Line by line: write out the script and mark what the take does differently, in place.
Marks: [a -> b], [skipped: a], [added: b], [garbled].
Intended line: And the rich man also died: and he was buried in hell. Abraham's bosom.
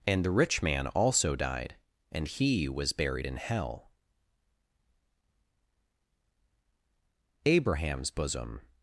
And the rich man also died: and he was buried in hell. Abraham's bosom.